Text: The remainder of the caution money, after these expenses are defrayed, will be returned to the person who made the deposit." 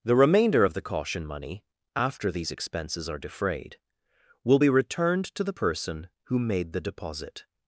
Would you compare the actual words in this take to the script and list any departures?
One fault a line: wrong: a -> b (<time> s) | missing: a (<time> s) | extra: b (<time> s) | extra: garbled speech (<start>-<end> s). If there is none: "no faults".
no faults